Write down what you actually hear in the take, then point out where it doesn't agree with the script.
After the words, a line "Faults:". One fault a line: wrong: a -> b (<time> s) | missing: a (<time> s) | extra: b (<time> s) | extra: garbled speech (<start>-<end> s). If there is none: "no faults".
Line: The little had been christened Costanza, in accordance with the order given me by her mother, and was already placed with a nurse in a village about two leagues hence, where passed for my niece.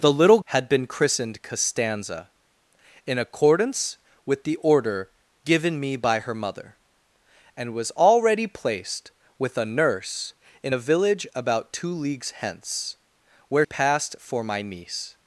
The little had been christened Costanza, in accordance with the order given me by her mother, and was already placed with a nurse in a village about two leagues hence, where passed for my niece.
Faults:
no faults